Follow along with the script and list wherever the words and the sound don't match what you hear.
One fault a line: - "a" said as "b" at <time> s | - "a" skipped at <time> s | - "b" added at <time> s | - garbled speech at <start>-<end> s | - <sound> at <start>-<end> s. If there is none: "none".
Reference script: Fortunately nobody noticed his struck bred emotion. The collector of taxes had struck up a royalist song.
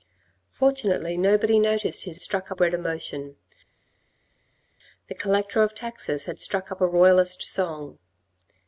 none